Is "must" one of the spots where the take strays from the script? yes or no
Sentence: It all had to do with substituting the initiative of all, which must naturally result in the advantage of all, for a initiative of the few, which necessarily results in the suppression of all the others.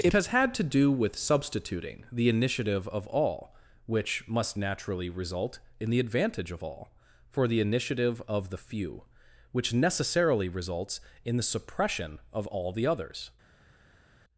no